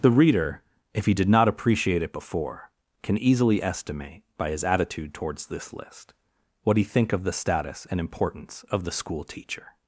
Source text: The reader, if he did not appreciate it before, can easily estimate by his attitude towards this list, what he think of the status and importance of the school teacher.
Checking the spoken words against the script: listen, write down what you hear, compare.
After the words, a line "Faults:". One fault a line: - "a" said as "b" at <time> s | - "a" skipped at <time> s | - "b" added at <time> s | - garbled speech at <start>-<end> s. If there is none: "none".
The reader, if he did not appreciate it before, can easily estimate by his attitude towards this list, what he think of the status and importance of the school teacher.
Faults:
none